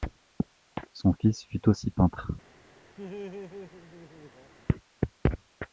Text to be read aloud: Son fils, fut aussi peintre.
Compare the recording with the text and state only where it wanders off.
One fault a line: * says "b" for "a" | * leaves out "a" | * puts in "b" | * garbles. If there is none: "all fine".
all fine